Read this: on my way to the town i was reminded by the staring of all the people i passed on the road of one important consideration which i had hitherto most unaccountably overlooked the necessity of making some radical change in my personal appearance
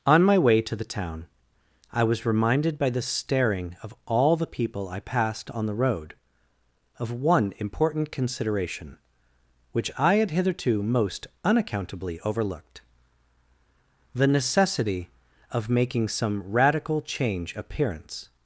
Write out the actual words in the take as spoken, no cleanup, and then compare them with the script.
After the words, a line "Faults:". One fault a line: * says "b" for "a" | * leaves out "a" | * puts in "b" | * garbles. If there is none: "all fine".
on my way to the town i was reminded by the staring of all the people i passed on the road of one important consideration which i had hitherto most unaccountably overlooked the necessity of making some radical change appearance
Faults:
* leaves out "in my personal"